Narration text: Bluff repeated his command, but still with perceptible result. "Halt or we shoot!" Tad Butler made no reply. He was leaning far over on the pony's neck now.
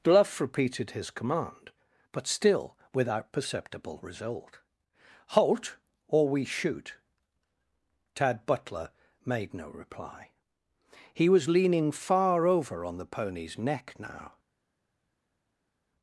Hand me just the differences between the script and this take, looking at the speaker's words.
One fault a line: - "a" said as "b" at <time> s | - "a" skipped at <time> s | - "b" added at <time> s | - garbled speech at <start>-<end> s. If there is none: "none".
- "with" said as "without" at 2.9 s